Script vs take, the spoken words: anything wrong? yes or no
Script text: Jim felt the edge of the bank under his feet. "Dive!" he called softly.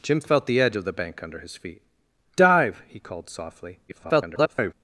yes